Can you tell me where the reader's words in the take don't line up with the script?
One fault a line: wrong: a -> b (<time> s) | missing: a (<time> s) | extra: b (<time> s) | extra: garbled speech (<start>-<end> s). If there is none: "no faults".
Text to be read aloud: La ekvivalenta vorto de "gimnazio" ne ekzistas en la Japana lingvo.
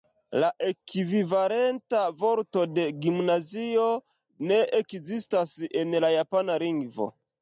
no faults